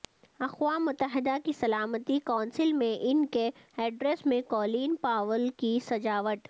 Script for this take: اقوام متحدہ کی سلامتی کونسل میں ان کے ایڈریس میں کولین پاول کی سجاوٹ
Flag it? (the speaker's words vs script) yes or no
no